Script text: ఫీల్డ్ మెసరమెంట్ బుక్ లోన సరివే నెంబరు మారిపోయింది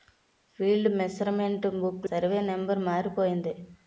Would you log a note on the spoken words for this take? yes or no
yes